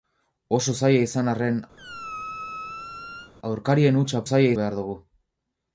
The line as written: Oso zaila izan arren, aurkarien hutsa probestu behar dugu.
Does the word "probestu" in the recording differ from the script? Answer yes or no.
yes